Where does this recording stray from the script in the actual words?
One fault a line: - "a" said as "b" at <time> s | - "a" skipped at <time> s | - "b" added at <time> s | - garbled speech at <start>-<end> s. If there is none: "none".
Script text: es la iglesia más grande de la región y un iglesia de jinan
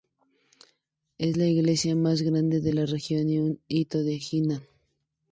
- "iglesia" said as "hito" at 3.7 s